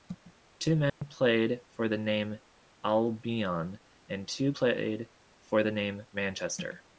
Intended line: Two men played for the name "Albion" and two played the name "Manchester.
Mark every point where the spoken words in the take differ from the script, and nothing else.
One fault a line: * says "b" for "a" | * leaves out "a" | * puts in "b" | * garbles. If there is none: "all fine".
* puts in "for"